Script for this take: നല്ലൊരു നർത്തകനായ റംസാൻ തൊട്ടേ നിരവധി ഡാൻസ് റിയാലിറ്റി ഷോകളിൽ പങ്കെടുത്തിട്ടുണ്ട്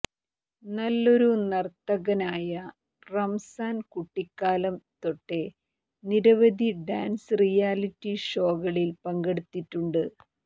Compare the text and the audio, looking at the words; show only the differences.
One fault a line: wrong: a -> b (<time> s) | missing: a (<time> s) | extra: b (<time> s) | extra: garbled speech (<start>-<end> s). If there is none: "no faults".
extra: കുട്ടിക്കാലം (3.9 s)